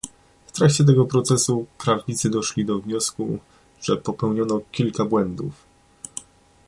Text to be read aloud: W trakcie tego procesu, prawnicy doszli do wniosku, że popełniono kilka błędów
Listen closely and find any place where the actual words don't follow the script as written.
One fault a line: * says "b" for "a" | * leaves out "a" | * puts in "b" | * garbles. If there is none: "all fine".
all fine